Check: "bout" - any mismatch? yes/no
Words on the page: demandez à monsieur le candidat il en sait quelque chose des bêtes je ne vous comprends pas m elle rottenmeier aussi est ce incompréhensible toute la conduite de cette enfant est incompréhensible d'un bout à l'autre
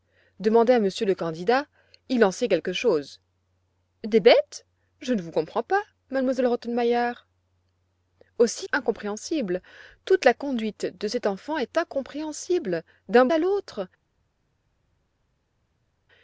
yes